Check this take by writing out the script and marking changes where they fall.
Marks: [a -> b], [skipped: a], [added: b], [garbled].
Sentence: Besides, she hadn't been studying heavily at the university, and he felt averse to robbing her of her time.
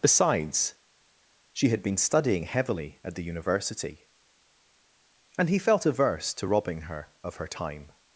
Besides, she [hadn't -> had] been studying heavily at the university, and he felt averse to robbing her of her time.